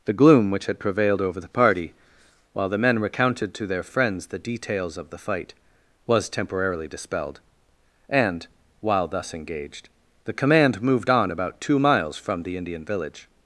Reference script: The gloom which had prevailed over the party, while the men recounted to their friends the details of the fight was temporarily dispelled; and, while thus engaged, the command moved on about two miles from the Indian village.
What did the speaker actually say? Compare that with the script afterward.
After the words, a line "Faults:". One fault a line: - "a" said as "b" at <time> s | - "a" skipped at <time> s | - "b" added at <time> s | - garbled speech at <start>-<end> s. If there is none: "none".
The gloom which had prevailed over the party, while the men recounted to their friends the details of the fight was temporarily dispelled; and, while thus engaged, the command moved on about two miles from the Indian village.
Faults:
none